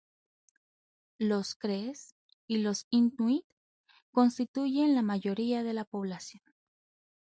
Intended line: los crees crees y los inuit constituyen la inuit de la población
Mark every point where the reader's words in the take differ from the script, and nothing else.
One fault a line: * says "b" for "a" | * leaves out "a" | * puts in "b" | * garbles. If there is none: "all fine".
* leaves out "crees"
* says "mayoría" for "inuit"